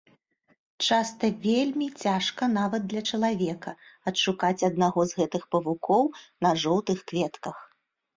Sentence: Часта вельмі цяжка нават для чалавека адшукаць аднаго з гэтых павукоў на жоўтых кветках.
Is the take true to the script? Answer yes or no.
yes